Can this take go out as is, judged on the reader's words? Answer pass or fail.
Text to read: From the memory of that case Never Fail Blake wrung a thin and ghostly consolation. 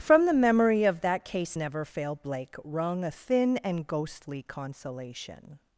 pass